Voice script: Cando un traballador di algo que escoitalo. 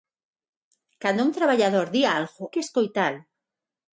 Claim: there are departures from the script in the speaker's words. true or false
false